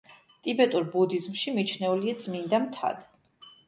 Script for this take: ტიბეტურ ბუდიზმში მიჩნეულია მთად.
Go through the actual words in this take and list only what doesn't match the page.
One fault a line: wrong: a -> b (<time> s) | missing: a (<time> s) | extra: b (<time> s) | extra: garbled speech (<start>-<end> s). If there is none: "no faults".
extra: წმინდა (2.2 s)